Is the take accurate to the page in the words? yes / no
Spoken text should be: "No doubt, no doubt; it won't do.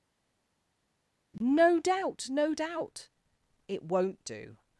yes